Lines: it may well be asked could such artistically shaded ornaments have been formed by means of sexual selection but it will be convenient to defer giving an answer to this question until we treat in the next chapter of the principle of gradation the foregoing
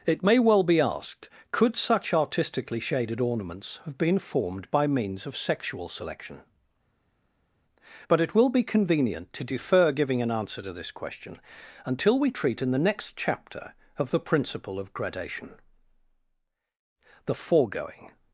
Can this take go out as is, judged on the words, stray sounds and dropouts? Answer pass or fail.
pass